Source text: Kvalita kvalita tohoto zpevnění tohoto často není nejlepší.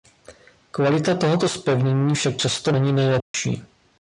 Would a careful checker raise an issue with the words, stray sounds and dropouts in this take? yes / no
yes